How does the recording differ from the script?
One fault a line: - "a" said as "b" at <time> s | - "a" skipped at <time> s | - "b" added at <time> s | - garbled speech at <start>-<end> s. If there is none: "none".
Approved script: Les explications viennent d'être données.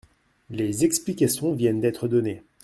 none